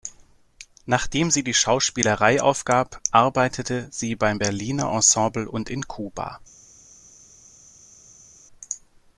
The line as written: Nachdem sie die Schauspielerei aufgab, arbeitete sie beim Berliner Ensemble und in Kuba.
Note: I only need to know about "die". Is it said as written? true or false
true